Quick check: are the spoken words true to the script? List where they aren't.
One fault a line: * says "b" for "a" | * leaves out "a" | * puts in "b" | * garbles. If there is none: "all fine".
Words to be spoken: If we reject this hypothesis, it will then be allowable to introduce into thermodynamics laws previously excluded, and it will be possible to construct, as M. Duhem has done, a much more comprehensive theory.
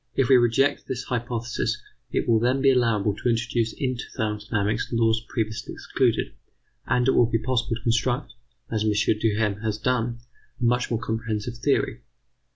all fine